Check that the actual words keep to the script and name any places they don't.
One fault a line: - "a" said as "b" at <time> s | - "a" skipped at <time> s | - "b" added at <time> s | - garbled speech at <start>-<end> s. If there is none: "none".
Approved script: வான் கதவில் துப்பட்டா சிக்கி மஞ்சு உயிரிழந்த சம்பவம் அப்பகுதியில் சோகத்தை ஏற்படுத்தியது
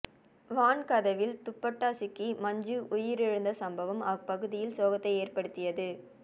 none